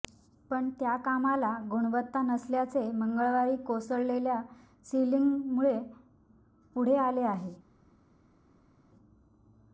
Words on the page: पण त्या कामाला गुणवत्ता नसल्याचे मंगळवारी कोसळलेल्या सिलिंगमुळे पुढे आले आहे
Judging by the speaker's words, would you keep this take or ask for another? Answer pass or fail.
pass